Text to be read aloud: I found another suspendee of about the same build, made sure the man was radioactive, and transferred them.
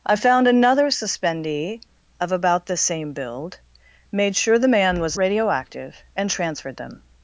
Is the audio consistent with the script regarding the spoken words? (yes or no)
yes